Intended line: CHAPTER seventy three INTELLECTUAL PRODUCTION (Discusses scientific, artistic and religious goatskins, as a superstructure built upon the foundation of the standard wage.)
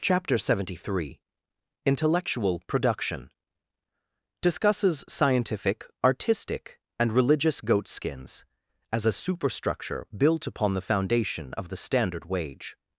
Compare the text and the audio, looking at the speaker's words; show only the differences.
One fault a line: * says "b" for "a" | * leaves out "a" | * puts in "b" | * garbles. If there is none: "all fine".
all fine